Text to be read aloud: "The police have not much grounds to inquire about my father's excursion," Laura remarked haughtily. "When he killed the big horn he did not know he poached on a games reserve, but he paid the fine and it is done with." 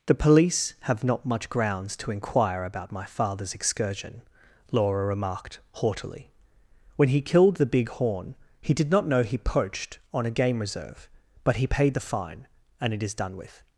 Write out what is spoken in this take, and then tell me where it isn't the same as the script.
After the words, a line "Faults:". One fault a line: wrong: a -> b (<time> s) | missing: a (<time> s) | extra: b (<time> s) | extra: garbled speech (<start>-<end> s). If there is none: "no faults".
"The police have not much grounds to inquire about my father's excursion," Laura remarked haughtily. "When he killed the big horn he did not know he poached on a game reserve, but he paid the fine and it is done with."
Faults:
wrong: games -> game (10.3 s)